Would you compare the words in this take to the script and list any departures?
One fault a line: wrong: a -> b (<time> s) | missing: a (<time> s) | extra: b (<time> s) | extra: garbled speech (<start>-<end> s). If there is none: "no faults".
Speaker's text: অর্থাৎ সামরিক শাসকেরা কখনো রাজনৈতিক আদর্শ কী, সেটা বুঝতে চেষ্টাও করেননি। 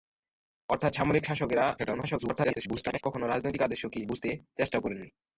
extra: garbled speech (1.8-3.0 s)
missing: সেটা (4.0 s)